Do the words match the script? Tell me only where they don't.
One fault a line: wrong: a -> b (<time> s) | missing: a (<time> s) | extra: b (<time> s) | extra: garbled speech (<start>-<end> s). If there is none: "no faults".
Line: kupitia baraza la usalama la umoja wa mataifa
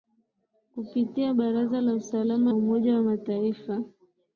missing: la (2.5 s)